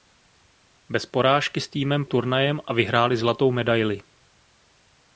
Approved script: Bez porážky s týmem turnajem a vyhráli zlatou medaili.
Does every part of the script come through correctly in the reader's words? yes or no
yes